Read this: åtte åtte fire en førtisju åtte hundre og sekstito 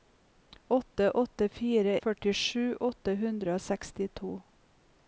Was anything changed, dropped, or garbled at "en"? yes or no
yes